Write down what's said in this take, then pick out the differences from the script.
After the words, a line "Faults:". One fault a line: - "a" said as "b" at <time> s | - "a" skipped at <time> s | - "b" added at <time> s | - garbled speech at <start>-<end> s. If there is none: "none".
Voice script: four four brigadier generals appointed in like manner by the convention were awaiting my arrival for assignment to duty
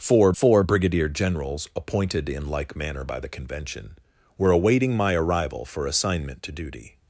four four brigadier generals appointed in like manner by the convention were awaiting my arrival for assignment to duty
Faults:
none